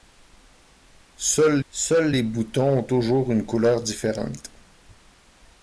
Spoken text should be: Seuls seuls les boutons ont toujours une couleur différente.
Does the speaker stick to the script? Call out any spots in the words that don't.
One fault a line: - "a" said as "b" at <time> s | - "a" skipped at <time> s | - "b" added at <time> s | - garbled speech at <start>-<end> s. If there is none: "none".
none